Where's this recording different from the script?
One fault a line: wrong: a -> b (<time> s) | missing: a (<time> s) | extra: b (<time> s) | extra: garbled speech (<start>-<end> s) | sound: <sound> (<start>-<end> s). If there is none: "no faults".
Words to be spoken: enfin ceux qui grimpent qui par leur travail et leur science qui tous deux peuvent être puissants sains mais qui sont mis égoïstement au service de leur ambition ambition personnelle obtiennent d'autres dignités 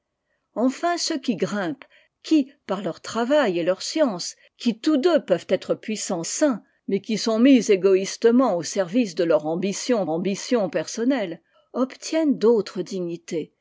no faults